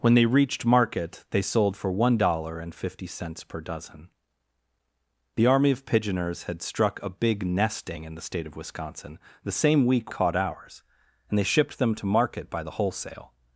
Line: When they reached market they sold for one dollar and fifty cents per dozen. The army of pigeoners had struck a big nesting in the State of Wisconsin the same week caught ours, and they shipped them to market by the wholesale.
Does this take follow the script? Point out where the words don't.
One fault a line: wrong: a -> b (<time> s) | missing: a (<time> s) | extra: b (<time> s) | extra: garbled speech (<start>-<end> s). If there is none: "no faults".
no faults